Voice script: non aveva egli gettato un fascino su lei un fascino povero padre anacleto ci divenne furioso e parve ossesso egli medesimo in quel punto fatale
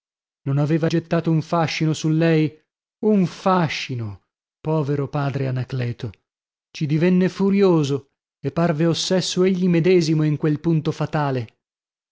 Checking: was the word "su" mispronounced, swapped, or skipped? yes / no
no